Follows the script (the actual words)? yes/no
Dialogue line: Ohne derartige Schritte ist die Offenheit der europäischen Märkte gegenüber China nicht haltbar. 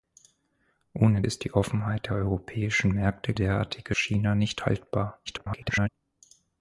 no